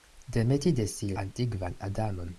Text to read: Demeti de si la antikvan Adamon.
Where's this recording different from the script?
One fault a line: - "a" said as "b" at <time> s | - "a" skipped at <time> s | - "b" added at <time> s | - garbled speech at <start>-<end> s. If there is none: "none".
- "la" skipped at 1.1 s